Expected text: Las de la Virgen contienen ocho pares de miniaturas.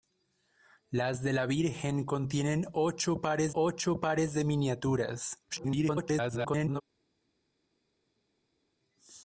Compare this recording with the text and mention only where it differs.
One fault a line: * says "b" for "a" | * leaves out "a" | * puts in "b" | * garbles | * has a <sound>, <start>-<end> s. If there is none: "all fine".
* puts in "ocho pares"
* garbles